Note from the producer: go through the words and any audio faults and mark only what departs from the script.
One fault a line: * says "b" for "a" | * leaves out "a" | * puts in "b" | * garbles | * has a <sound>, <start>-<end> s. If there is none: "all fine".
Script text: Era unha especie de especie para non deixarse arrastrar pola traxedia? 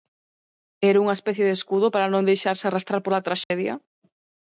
* says "escudo" for "especie"
* has a dropout, 3.4-3.5 s